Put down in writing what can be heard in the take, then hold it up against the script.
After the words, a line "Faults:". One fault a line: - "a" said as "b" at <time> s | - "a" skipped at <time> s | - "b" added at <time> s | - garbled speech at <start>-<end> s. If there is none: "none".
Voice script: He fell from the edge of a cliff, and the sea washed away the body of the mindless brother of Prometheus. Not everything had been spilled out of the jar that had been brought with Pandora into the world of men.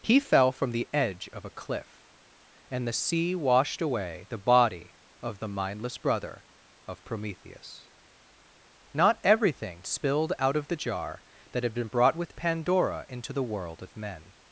He fell from the edge of a cliff, and the sea washed away the body of the mindless brother of Prometheus. Not everything spilled out of the jar that had been brought with Pandora into the world of men.
Faults:
- "had been" skipped at 9.8 s